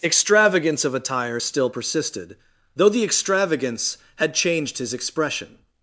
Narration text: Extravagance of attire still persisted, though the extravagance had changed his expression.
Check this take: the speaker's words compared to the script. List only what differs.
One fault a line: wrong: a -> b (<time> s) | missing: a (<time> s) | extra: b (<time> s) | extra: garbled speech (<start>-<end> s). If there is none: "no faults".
no faults